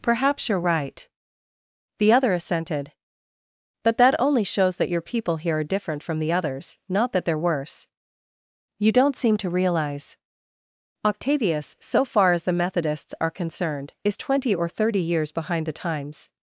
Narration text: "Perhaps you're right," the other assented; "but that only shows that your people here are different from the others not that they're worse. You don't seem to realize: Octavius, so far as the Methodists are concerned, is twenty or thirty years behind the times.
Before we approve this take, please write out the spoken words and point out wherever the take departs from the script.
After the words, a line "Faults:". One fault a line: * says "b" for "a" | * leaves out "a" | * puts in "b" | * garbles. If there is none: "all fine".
"Perhaps you're right," the other assented; "but that only shows that your people here are different from the others not that they're worse. You don't seem to realize: Octavius, so far as the Methodists are concerned, is twenty or thirty years behind the times.
Faults:
all fine